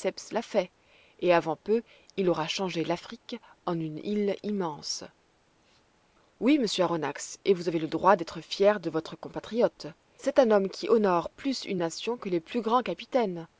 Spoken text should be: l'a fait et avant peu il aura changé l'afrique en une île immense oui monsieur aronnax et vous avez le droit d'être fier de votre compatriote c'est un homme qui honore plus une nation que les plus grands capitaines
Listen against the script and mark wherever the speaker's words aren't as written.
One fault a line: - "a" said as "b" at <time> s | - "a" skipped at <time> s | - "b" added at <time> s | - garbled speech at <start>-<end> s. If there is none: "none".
none